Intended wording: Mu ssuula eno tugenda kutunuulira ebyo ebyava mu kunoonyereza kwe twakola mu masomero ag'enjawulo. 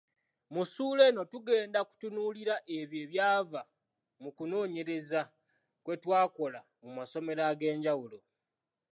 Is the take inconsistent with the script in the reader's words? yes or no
no